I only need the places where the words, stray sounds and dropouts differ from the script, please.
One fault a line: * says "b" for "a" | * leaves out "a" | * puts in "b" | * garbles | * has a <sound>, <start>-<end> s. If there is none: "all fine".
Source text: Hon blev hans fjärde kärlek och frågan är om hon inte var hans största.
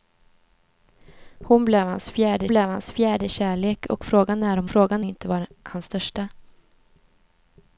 * puts in "blev hans fjärde"
* says "frågan" for "hon"